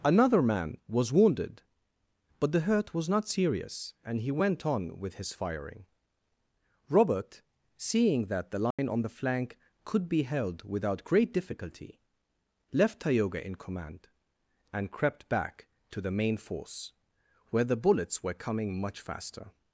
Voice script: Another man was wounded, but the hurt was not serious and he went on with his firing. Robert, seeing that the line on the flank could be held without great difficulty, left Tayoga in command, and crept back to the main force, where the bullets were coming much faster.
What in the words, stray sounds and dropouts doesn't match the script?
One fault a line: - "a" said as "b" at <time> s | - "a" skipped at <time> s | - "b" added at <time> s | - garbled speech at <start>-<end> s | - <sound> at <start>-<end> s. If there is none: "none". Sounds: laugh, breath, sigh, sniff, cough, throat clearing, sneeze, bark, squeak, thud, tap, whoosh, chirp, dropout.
- dropout at 8.7-8.8 s